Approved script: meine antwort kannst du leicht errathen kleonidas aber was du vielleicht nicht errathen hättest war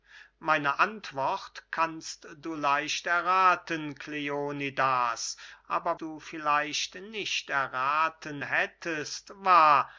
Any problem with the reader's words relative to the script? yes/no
yes